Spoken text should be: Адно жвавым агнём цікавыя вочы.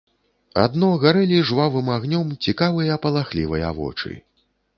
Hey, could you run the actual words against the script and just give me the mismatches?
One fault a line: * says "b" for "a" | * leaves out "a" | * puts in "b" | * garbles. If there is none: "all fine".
* puts in "гарэлі"
* puts in "палахлівыя"